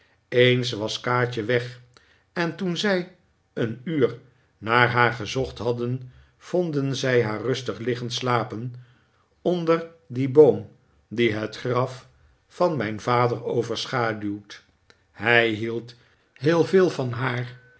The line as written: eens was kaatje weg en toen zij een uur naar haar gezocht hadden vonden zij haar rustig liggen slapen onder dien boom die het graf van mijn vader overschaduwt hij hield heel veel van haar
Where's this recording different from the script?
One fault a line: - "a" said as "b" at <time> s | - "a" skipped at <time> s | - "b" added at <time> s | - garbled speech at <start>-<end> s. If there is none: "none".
none